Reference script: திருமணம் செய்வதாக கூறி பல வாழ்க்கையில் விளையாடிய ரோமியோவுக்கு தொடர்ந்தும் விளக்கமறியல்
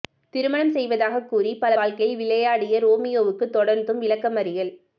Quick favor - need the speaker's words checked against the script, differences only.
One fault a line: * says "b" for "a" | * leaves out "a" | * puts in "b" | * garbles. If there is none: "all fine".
all fine